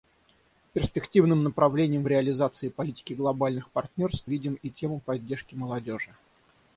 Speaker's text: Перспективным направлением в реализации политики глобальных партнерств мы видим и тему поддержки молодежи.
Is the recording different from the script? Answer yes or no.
yes